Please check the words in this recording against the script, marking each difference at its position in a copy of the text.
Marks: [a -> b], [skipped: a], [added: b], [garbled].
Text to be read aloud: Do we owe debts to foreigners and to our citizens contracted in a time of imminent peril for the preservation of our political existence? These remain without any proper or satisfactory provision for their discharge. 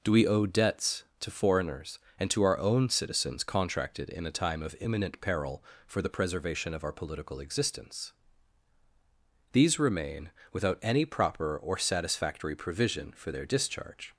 Do we owe debts to foreigners and to our [added: own] citizens contracted in a time of imminent peril for the preservation of our political existence? These remain without any proper or satisfactory provision for their discharge.